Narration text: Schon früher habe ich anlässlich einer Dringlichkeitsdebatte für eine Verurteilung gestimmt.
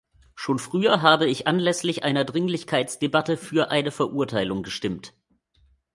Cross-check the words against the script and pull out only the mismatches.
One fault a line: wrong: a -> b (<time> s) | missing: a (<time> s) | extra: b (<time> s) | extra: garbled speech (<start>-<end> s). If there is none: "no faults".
no faults